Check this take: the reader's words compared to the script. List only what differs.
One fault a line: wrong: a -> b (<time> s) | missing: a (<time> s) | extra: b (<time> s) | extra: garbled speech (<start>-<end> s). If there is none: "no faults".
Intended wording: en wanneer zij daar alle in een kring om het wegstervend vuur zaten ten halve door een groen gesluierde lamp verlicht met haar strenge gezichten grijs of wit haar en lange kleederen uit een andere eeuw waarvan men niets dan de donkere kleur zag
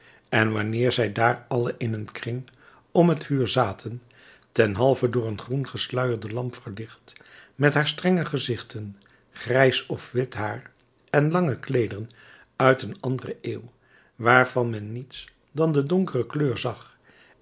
missing: wegstervend (3.2 s)